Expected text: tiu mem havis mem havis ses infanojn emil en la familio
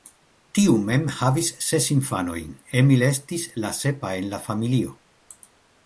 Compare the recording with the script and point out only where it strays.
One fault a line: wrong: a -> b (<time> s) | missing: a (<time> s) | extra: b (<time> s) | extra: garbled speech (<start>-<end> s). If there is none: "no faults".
missing: mem havis (1.5 s)
extra: estis la sepa (3.1 s)